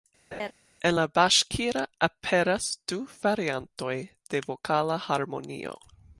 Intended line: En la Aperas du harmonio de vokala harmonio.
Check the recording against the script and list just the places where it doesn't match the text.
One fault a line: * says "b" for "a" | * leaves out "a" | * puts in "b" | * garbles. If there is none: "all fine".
* puts in "Baŝkira"
* says "variantoj" for "harmonio"